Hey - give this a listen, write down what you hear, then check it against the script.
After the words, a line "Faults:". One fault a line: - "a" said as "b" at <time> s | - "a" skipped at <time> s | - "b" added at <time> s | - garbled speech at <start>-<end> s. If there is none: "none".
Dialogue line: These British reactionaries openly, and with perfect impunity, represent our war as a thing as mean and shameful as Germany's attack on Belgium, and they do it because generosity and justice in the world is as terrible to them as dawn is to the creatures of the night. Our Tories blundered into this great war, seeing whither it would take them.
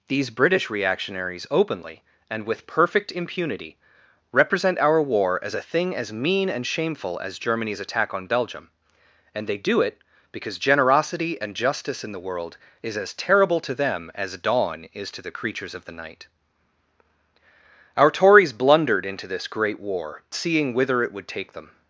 These British reactionaries openly, and with perfect impunity, represent our war as a thing as mean and shameful as Germany's attack on Belgium, and they do it because generosity and justice in the world is as terrible to them as dawn is to the creatures of the night. Our Tories blundered into this great war, seeing whither it would take them.
Faults:
none